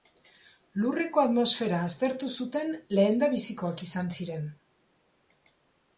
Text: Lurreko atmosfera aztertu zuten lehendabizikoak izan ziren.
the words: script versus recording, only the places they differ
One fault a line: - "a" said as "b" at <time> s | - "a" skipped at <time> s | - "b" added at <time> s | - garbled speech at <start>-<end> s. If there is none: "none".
none